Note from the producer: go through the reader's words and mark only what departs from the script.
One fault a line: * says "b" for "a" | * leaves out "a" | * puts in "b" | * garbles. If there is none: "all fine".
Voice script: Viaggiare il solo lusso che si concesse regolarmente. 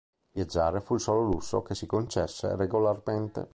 * puts in "fu"